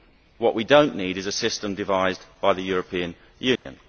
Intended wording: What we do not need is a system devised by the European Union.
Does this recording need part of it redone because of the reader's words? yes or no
no